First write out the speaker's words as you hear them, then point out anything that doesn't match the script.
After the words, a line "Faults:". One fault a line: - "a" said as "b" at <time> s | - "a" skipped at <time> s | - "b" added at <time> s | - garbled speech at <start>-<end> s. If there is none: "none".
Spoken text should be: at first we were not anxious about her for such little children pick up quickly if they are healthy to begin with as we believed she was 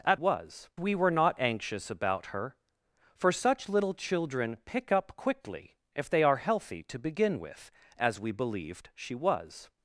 at was we were not anxious about her for such little children pick up quickly if they are healthy to begin with as we believed she was
Faults:
- "first" said as "was" at 0.1 s